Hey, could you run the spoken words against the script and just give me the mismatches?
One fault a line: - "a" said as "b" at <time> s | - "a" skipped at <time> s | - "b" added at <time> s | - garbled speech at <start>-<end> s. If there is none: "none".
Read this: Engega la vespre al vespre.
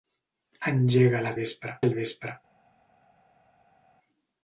none